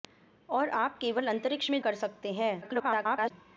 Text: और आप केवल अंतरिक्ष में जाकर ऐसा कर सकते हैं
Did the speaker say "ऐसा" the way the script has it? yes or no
no